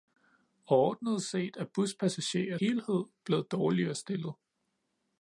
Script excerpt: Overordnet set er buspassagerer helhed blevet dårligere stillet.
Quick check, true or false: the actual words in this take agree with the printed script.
true